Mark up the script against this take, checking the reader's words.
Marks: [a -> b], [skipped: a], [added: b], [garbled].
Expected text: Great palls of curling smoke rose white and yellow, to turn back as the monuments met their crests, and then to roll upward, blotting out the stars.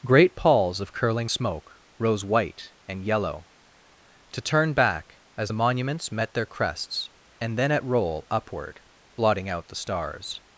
Great palls of curling smoke rose white and yellow, to turn back as the monuments met their crests, and then [to -> at] roll upward, blotting out the stars.